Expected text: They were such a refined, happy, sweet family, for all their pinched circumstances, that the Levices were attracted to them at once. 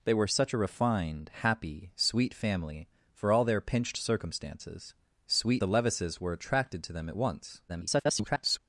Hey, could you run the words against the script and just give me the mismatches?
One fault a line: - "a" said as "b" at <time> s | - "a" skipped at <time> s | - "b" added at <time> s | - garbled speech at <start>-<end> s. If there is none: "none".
- "that" said as "sweet" at 5.3 s
- garbled speech at 7.7-8.6 s